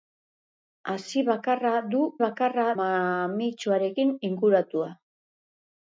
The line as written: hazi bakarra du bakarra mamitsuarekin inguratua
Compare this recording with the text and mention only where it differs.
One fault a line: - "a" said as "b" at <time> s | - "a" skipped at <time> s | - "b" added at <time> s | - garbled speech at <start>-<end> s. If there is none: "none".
none